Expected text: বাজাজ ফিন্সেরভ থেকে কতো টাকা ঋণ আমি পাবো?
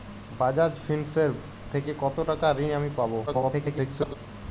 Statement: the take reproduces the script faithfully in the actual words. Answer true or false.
false